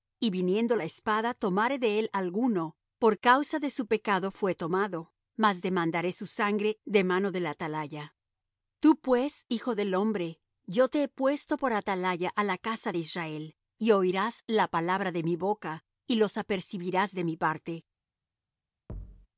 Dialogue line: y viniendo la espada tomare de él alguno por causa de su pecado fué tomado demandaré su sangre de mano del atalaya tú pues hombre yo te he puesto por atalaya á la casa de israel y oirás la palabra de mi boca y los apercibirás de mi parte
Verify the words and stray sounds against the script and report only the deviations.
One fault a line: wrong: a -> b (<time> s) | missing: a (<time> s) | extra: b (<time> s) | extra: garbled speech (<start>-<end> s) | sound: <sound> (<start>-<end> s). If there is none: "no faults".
extra: mas (5.4 s)
extra: hijo del (9.5 s)
sound: thud (18.9-19.3 s)